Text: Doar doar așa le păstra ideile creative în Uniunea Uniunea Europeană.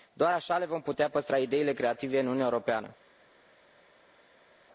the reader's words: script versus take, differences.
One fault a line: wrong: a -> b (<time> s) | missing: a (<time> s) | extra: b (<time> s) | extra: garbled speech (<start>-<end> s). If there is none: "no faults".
missing: doar (0.3 s)
extra: vom putea (0.7 s)
missing: Uniunea (2.4 s)